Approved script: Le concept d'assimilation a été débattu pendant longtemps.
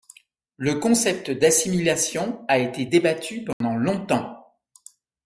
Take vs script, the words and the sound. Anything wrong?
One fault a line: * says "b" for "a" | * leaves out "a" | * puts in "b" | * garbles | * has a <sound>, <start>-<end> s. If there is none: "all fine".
* has a dropout, 3.5-3.6 s